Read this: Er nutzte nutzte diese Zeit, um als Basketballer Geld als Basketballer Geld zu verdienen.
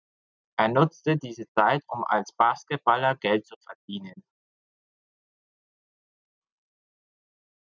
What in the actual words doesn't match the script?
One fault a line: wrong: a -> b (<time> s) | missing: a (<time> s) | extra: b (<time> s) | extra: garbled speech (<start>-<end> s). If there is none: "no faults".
missing: nutzte (1.1 s)
missing: als Basketballer Geld (3.5 s)